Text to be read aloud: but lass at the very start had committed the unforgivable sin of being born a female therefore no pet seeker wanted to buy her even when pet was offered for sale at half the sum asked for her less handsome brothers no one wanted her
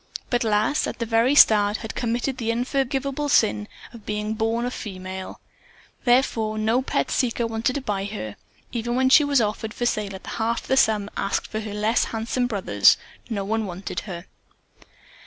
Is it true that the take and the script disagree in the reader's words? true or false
true